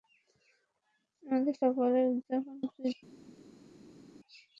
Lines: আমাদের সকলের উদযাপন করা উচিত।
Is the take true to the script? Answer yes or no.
no